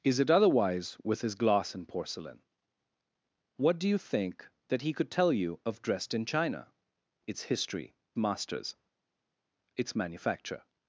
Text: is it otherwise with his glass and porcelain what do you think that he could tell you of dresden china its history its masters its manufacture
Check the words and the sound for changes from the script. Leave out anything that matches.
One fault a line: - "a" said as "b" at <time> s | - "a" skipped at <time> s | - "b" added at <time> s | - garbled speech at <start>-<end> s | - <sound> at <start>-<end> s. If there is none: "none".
- "its" skipped at 7.9 s